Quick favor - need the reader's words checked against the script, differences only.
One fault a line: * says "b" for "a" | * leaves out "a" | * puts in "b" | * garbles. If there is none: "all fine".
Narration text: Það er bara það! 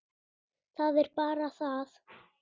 all fine